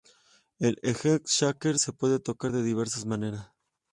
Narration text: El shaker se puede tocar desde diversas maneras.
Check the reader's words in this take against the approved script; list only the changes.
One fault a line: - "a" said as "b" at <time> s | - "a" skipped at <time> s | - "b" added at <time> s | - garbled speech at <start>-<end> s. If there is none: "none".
- "egg" added at 0.8 s
- "desde" said as "de" at 2.5 s